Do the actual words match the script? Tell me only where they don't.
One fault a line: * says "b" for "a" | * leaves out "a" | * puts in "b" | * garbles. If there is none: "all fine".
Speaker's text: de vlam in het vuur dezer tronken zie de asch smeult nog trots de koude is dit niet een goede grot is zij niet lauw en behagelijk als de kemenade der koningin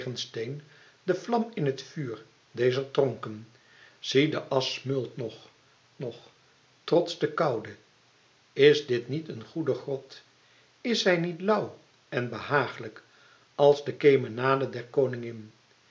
* puts in "nog"